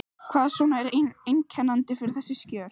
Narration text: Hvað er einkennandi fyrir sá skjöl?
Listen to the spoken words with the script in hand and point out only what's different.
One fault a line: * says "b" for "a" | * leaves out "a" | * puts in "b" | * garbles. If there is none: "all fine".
* puts in "svona"
* says "þessi" for "sá"